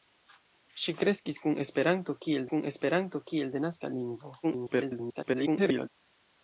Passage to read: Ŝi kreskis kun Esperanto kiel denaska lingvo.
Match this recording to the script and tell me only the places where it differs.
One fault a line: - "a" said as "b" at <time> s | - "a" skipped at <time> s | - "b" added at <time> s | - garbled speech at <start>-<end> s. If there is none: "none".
- "kun Esperanto kiel" added at 2.5 s
- garbled speech at 4.4-5.9 s